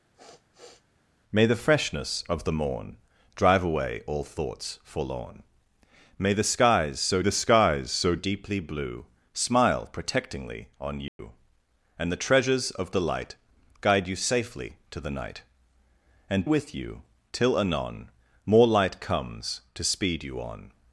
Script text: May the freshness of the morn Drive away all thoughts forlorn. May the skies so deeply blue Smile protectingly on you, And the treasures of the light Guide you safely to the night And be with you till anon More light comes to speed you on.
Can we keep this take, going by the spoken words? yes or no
no